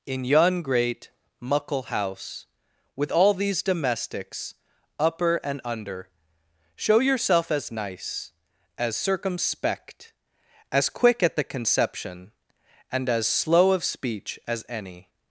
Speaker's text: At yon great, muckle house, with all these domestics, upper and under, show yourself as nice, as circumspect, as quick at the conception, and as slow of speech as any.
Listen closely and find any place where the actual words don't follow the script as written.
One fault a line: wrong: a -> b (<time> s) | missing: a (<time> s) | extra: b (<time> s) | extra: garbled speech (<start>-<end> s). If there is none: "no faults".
wrong: At -> In (0.1 s)